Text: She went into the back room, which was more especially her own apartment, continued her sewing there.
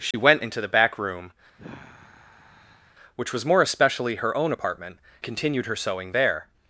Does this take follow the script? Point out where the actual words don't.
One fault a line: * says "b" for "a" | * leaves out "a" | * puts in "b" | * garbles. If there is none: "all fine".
all fine